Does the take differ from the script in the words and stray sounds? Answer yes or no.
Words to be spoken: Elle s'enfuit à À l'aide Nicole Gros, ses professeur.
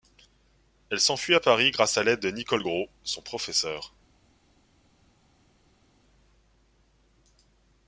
yes